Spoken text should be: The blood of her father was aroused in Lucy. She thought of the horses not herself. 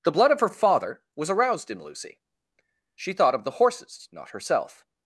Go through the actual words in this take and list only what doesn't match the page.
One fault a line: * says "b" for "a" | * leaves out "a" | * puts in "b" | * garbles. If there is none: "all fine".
all fine